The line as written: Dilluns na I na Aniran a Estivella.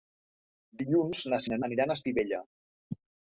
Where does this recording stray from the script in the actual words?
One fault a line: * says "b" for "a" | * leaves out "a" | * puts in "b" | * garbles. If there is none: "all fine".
all fine